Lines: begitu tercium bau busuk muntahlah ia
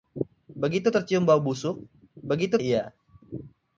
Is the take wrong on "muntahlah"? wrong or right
wrong